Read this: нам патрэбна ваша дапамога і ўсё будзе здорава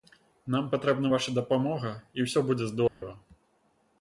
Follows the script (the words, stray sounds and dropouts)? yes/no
no